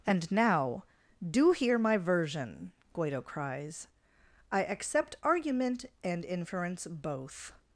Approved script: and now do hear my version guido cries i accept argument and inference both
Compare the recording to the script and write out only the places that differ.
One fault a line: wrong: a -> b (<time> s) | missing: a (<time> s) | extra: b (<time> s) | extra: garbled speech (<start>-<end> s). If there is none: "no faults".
no faults